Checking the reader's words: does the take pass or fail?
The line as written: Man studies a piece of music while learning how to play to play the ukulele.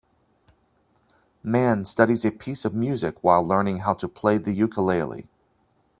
fail